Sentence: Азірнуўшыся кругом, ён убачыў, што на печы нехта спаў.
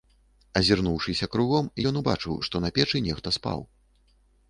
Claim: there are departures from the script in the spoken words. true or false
false